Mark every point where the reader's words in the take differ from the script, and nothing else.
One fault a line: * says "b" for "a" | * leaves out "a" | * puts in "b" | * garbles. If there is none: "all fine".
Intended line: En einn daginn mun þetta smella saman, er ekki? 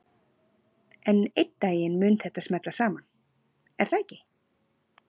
* puts in "það"